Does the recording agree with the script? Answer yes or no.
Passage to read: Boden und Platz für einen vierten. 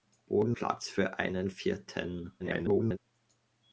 no